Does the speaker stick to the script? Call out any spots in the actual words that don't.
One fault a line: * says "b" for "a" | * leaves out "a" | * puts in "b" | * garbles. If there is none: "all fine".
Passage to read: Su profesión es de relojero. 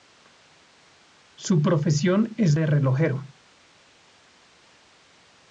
all fine